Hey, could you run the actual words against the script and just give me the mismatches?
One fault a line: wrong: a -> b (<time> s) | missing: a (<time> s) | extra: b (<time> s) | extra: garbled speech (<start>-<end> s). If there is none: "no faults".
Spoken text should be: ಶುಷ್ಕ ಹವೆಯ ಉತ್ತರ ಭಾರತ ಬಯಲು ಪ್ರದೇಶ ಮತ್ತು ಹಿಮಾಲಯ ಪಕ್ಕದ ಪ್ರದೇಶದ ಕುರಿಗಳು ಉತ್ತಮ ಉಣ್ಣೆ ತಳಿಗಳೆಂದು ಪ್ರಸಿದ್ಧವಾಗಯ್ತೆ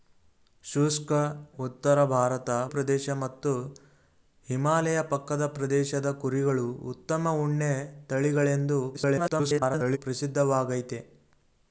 missing: ಹವೆಯ (1.1 s)
missing: ಬಯಲು (2.5 s)
extra: garbled speech (8.9-10.0 s)